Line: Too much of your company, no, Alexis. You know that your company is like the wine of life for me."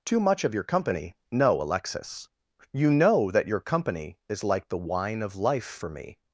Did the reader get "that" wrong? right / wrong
right